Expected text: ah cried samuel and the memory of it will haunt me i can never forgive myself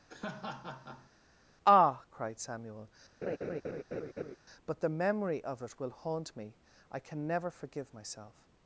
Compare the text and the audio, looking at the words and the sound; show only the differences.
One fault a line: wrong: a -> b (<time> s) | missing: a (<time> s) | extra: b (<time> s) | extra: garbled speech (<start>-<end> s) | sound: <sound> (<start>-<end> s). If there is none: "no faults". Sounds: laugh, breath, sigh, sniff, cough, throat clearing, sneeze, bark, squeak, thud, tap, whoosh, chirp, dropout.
sound: laugh (0.1-1.1 s)
sound: laugh (3.2-4.4 s)
wrong: and -> but (4.7 s)